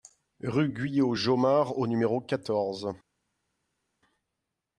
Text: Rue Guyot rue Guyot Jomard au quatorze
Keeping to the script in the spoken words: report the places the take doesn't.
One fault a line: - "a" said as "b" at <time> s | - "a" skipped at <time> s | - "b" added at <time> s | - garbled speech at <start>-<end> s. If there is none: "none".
- "rue Guyot" skipped at 1.1 s
- "numéro" added at 1.9 s